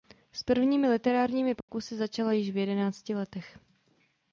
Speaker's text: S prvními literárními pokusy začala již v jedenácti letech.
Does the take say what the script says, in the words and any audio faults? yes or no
no